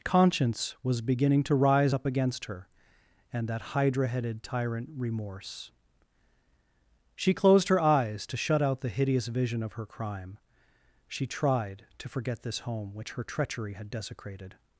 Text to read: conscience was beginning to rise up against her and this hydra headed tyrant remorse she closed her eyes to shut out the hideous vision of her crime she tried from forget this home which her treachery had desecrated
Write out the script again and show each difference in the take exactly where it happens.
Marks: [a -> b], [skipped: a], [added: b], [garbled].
conscience was beginning to rise up against her and [this -> that] hydra headed tyrant remorse she closed her eyes to shut out the hideous vision of her crime she tried [from -> to] forget this home which her treachery had desecrated